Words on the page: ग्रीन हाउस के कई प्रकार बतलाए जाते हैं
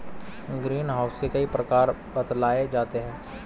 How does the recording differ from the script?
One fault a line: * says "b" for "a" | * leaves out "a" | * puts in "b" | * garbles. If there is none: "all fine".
all fine